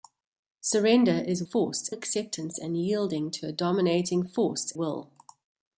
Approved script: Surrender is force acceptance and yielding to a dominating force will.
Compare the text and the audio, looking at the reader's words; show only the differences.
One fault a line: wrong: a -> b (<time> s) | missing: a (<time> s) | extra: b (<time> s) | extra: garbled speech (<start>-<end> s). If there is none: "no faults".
no faults